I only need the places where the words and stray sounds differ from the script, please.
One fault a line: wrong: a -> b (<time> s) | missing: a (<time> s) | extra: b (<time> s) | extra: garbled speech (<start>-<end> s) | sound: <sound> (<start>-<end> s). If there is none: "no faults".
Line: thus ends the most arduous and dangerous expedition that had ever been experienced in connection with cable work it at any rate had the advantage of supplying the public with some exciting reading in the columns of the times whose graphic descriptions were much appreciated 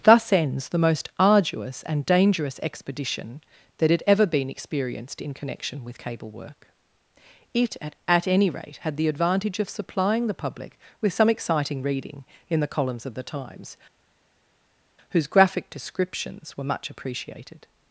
extra: at (8.1 s)